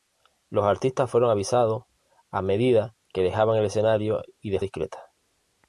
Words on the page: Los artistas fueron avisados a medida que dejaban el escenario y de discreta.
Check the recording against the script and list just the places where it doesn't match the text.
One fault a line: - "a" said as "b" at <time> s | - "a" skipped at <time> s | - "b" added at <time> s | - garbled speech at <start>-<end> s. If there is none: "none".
none